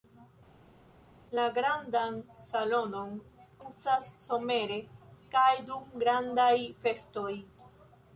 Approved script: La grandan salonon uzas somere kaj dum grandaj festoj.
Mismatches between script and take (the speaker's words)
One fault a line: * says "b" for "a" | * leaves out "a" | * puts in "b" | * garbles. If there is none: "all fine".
all fine